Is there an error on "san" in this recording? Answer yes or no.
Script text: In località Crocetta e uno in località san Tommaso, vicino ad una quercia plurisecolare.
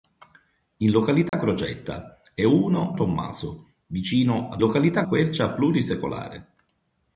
yes